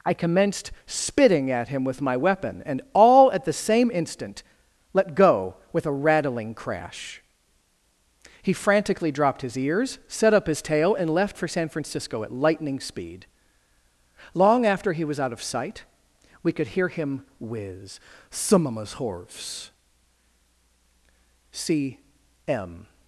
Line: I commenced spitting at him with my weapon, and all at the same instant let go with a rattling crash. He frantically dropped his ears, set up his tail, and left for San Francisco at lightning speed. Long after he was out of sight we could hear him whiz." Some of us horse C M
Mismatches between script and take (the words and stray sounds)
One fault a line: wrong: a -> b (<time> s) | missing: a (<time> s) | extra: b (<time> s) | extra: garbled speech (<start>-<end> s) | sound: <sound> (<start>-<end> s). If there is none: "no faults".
no faults